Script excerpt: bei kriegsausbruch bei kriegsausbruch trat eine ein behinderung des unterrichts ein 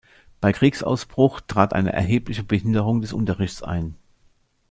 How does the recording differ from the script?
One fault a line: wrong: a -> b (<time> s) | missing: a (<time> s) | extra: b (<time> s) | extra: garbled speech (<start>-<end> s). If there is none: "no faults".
missing: bei kriegsausbruch (1.4 s)
wrong: ein -> erhebliche (1.9 s)